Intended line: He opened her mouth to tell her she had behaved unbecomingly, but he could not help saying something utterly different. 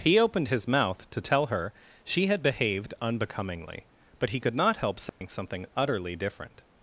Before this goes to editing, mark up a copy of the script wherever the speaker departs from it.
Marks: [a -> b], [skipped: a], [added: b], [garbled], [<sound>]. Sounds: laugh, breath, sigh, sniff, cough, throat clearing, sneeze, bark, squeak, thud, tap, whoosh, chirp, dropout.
He opened [her -> his] mouth to tell her she had behaved unbecomingly, but he could not help saying [dropout] something utterly different.